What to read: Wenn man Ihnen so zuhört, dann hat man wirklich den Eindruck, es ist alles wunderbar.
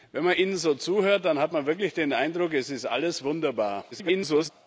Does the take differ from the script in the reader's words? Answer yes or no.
yes